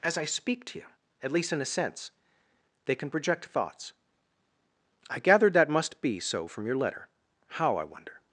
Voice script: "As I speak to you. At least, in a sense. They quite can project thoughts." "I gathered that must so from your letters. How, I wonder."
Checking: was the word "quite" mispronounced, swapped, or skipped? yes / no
yes